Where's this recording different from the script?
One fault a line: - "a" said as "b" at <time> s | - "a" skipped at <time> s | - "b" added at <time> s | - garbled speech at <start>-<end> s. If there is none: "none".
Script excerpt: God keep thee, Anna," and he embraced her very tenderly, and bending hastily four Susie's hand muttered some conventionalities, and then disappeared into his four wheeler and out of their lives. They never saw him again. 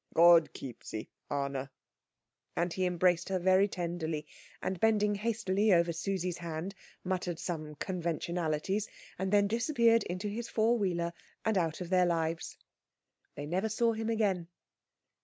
- "four" said as "over" at 5.7 s